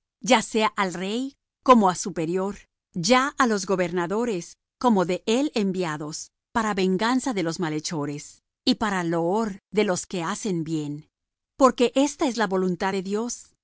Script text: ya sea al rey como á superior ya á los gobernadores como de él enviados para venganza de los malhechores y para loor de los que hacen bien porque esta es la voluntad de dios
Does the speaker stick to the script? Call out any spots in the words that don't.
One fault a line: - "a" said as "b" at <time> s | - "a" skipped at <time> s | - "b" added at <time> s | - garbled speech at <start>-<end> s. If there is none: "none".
none